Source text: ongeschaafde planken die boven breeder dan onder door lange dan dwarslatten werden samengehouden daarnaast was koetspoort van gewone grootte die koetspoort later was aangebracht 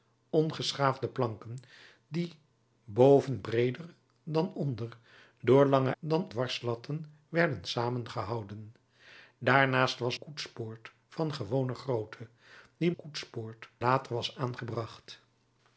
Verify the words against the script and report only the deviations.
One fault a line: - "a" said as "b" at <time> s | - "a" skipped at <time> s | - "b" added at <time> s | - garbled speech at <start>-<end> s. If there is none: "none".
none